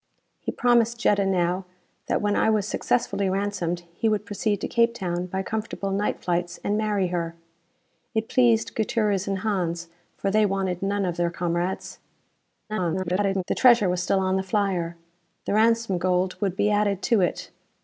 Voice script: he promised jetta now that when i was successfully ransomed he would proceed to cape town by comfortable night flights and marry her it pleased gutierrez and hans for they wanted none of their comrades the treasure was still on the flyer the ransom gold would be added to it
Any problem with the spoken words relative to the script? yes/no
yes